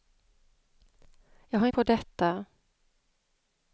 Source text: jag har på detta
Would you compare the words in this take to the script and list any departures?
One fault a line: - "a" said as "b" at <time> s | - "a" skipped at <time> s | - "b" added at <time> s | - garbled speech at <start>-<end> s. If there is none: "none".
none